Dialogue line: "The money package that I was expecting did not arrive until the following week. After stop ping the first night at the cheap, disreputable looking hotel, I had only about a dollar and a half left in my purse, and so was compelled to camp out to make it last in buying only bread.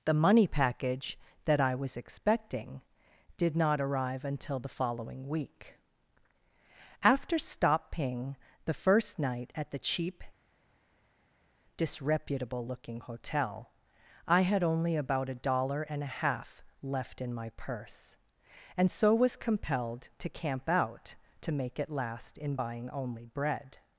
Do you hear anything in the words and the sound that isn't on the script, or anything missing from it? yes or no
no